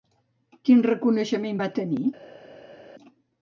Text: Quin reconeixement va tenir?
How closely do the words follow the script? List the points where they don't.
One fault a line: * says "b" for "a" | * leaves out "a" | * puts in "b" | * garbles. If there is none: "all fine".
all fine